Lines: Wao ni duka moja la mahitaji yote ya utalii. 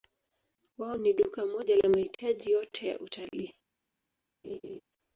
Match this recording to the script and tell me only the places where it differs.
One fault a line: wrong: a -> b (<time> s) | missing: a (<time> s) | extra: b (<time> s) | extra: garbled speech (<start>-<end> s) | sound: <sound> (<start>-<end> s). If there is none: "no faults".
sound: laugh (4.4-4.8 s)